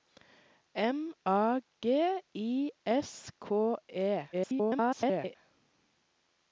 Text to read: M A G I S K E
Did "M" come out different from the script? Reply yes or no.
no